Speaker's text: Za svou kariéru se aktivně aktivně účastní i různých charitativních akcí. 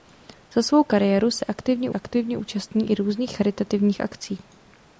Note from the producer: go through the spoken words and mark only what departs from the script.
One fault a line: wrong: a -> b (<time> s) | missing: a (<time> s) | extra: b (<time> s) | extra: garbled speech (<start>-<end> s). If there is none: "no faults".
no faults